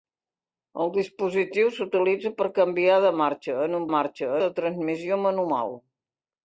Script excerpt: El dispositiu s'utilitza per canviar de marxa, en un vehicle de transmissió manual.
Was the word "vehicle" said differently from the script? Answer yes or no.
yes